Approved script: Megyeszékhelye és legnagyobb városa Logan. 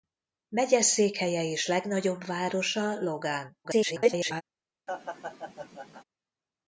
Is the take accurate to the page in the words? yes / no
no